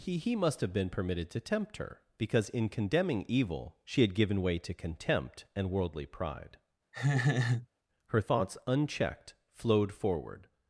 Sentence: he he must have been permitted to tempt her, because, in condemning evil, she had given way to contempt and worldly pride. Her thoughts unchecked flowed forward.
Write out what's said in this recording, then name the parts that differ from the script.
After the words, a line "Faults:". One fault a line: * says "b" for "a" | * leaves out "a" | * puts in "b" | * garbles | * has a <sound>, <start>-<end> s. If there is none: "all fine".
he he must have been permitted to tempt her, because, in condemning evil, she had given way to contempt and worldly pride. Her thoughts unchecked flowed forward.
Faults:
* has a laugh, 6.9-7.7 s